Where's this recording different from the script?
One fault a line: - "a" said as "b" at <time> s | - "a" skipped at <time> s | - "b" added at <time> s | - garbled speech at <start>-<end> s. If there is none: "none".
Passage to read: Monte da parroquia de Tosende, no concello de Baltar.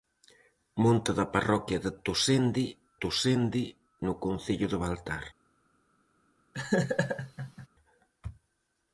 - "Tosende" added at 3.0 s